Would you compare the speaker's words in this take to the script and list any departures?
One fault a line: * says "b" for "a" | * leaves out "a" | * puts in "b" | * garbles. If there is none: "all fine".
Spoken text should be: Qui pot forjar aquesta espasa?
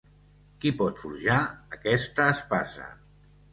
all fine